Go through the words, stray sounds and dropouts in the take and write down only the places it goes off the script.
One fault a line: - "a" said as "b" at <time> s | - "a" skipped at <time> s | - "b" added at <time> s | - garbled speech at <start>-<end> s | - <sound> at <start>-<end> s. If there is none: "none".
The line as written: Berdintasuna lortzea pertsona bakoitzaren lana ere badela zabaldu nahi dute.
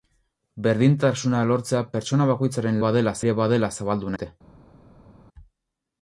- "lana" said as "badela" at 2.8 s
- "nahi" skipped at 4.2 s